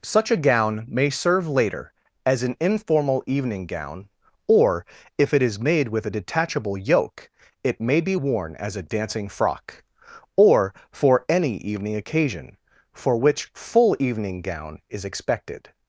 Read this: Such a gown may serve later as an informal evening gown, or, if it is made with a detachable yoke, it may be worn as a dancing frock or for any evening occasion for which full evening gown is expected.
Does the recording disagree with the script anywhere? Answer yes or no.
no